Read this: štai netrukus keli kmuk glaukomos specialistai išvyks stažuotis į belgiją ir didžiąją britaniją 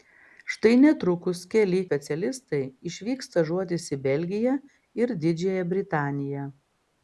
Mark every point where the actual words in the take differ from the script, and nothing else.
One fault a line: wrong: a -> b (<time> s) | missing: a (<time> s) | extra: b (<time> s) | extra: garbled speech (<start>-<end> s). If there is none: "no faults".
missing: kmuk glaukomos (1.8 s)